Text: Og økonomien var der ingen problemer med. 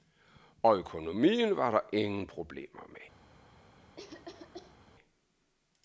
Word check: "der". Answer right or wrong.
right